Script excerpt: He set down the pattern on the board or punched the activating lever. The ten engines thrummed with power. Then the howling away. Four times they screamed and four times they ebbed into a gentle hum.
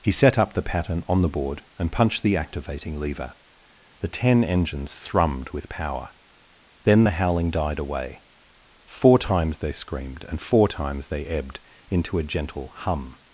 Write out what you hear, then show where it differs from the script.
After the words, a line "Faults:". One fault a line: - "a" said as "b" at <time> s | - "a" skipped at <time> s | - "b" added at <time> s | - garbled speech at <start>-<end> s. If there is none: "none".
He set up the pattern on the board and punched the activating lever. The ten engines thrummed with power. Then the howling died away. Four times they screamed and four times they ebbed into a gentle hum.
Faults:
- "down" said as "up" at 0.4 s
- "or" said as "and" at 1.8 s
- "died" added at 7.5 s